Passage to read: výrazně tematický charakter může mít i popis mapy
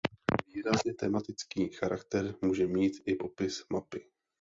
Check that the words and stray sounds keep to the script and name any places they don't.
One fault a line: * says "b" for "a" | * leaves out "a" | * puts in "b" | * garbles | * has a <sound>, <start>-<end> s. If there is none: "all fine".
all fine